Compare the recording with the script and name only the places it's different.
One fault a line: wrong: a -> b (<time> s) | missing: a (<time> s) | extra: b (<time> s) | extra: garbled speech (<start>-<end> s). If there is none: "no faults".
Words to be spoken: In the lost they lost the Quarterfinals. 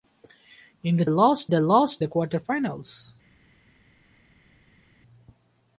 no faults